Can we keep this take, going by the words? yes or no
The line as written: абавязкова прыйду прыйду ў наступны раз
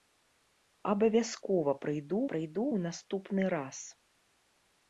yes